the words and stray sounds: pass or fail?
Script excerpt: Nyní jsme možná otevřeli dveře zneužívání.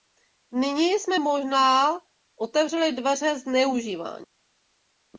pass